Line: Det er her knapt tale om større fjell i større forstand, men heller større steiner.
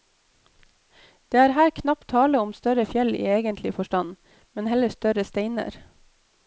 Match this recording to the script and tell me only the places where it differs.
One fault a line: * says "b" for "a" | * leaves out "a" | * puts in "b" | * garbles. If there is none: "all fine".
* says "egentlig" for "større"